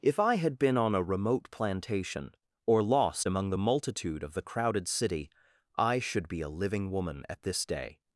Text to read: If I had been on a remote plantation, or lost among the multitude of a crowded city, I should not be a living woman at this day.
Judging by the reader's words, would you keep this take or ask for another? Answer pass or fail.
fail